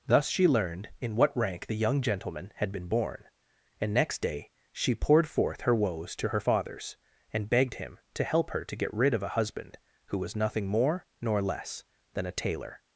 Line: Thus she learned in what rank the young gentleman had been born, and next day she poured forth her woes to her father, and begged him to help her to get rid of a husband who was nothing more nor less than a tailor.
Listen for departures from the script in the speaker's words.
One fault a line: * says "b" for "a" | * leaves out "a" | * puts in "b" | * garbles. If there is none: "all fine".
* says "fathers" for "father"